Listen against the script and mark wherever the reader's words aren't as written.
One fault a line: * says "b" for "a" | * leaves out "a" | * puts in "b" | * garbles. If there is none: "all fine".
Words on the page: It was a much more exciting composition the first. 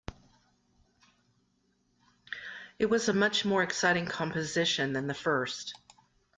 * puts in "than"